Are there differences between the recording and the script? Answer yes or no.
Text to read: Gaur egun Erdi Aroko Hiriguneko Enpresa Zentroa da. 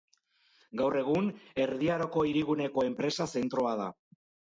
no